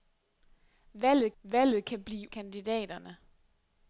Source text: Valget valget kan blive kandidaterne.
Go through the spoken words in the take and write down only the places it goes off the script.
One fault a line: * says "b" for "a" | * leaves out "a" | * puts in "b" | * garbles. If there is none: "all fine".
all fine